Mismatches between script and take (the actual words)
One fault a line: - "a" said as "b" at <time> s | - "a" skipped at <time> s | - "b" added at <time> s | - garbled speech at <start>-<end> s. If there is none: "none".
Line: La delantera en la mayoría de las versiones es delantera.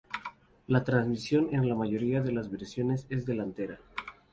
- "delantera" said as "transmisión" at 0.8 s